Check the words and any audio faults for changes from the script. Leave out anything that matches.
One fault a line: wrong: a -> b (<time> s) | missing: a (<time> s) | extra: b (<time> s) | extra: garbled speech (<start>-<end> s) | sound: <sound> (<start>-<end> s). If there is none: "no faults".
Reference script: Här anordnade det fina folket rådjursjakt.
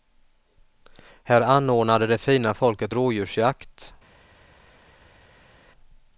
no faults